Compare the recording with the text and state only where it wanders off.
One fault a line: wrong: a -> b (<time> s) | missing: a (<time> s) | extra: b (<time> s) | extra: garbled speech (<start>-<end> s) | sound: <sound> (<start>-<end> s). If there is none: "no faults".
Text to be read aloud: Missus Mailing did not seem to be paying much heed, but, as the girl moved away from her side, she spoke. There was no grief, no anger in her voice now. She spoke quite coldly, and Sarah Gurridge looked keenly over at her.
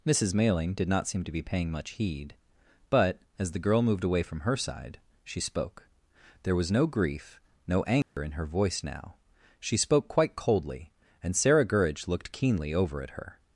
sound: dropout (8.0-8.2 s)